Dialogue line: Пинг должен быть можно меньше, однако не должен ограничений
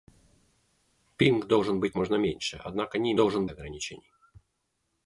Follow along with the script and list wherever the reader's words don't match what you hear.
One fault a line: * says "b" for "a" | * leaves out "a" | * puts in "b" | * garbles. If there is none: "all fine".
all fine